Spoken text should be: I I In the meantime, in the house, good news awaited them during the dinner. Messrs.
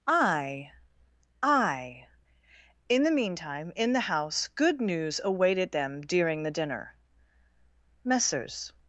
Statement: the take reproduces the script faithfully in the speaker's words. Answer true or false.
true